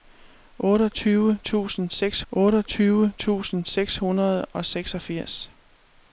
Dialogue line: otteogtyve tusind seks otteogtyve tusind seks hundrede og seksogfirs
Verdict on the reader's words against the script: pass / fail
pass